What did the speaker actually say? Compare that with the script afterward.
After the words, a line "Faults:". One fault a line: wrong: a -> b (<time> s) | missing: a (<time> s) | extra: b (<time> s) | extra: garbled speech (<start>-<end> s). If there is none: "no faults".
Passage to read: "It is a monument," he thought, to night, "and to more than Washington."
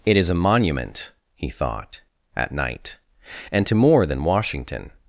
"It is a monument," he thought, at night, "and to more than Washington."
Faults:
wrong: to -> at (2.4 s)